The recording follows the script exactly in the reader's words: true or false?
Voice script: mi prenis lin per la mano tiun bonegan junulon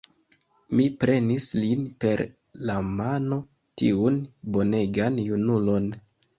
true